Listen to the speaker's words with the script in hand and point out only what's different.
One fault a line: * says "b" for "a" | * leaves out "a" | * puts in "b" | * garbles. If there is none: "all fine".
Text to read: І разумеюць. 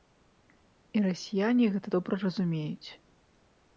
* puts in "расіяне гэта добра"